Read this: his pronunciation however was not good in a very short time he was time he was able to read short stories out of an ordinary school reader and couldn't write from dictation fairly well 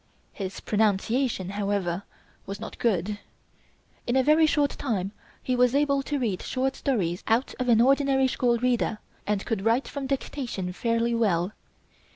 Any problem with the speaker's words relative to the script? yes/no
yes